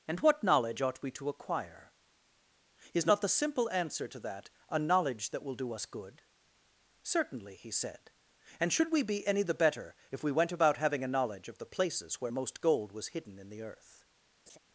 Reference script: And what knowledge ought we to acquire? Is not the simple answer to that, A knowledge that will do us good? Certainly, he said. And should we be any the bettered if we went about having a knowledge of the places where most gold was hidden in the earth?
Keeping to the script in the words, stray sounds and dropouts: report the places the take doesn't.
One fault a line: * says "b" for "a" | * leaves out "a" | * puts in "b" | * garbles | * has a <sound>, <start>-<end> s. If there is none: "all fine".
* says "better" for "bettered"
* has a laugh, 14.5-14.6 s